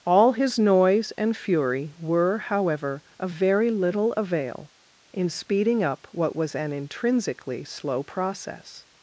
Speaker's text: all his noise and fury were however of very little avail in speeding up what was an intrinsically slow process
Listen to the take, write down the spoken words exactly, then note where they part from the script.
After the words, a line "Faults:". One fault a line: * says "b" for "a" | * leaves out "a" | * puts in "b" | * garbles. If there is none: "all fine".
all his noise and fury were however of very little avail in speeding up what was an intrinsically slow process
Faults:
all fine